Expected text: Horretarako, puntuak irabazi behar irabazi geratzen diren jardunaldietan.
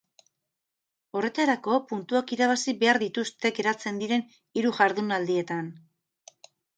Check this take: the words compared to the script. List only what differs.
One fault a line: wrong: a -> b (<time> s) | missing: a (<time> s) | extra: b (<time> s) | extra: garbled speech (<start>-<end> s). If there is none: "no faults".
wrong: irabazi -> dituzte (3.0 s)
extra: hiru (4.6 s)